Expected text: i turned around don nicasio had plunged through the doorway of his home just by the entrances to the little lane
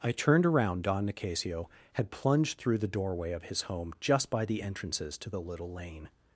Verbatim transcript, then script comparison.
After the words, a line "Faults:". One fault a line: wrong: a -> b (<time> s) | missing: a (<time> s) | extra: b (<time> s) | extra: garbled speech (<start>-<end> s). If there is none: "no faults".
i turned around don nicasio had plunged through the doorway of his home just by the entrances to the little lane
Faults:
no faults